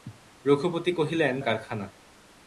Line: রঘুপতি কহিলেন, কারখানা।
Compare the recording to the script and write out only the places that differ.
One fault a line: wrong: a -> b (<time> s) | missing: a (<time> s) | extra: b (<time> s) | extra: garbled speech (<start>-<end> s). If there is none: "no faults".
no faults